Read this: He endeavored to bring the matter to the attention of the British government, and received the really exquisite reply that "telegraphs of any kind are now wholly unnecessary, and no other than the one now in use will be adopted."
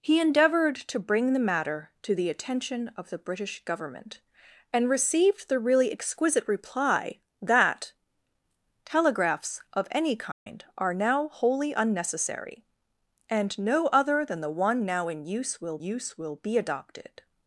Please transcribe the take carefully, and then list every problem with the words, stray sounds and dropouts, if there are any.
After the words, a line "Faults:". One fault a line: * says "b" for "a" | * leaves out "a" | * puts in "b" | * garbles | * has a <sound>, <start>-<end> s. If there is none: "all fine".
He endeavored to bring the matter to the attention of the British government, and received the really exquisite reply that "telegraphs of any kind are now wholly unnecessary, and no other than the one now in use will use will be adopted."
Faults:
* has a dropout, 10.3-10.5 s
* puts in "use will"